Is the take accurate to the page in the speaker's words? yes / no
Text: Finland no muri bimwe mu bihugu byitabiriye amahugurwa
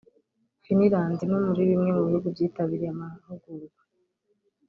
yes